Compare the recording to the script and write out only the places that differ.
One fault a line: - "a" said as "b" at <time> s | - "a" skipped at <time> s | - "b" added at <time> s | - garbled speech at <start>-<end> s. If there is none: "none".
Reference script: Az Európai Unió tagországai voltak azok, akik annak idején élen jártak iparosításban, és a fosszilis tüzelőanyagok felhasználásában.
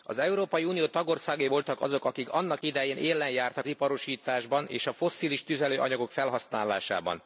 none